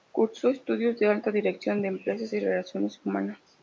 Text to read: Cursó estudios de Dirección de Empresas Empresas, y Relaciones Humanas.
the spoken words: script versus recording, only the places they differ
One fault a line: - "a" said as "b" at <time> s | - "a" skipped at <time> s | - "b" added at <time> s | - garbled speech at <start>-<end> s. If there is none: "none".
- "Alta" added at 1.1 s
- "Empresas" skipped at 2.3 s